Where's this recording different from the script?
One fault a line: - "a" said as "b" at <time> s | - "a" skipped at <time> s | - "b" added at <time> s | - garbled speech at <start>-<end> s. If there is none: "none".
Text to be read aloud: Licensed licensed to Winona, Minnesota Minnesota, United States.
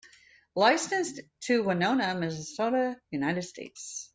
- "licensed" skipped at 1.2 s
- "Minnesota" skipped at 3.0 s